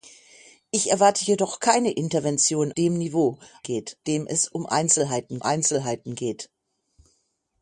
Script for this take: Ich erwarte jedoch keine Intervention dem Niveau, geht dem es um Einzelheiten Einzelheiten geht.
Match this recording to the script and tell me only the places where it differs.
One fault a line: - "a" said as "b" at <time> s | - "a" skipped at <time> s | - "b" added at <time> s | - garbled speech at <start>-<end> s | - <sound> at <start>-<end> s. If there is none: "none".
none